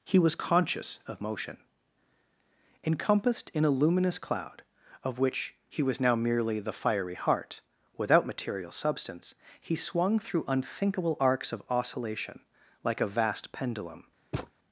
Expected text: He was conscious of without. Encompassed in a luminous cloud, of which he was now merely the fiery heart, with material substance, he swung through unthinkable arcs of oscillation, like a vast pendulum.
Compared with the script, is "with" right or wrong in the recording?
wrong